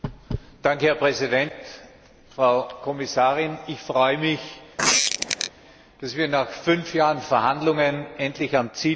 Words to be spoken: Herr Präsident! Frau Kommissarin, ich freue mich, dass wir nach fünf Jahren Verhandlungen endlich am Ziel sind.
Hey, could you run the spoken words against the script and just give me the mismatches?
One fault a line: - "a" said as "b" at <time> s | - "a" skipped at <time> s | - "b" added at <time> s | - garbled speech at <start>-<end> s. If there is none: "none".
none